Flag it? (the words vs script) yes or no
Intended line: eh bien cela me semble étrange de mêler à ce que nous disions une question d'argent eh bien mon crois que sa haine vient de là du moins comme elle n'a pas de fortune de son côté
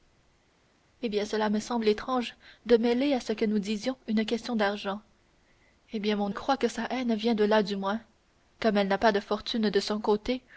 no